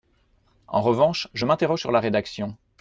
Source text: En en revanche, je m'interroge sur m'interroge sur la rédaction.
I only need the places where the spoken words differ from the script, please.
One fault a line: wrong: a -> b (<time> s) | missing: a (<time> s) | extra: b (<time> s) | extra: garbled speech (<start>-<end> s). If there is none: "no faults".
missing: en (0.8 s)
missing: m'interroge sur (1.9 s)